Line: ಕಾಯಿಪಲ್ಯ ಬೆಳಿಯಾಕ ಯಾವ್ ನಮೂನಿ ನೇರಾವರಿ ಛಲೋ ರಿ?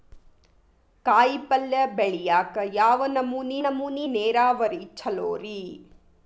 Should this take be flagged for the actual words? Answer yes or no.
yes